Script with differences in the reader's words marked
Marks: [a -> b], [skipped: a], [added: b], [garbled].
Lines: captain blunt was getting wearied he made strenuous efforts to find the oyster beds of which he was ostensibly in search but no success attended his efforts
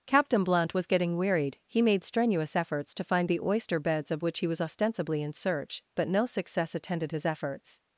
captain blunt was getting wearied he made strenuous efforts to find the oyster beds of which he was ostensibly in search but no success attended his efforts